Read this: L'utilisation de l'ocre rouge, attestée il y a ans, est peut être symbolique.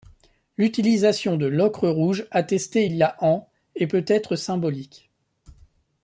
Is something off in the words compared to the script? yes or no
no